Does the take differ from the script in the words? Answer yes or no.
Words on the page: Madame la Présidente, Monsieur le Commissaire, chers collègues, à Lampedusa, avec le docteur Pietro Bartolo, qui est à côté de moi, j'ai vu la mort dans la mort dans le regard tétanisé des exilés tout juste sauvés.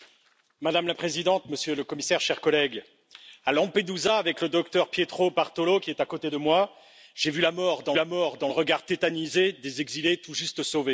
no